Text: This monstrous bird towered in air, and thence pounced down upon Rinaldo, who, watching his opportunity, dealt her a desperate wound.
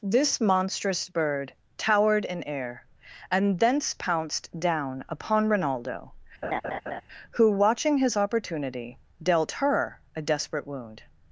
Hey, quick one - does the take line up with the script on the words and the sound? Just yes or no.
no